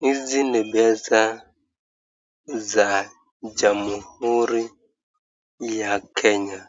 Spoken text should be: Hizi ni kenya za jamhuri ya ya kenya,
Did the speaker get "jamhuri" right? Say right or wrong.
right